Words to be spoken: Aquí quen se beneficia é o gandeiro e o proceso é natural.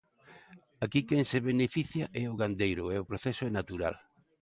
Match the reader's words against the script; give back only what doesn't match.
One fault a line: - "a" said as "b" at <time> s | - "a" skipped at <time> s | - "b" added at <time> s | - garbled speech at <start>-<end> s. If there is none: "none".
none